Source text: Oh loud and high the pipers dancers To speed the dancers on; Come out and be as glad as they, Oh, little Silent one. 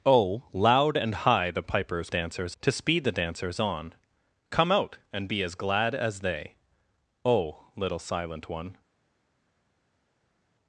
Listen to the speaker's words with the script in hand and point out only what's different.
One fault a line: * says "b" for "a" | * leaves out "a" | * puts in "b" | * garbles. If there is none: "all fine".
all fine